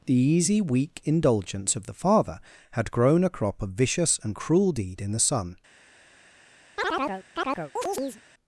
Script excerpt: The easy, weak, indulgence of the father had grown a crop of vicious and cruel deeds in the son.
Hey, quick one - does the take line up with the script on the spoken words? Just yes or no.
no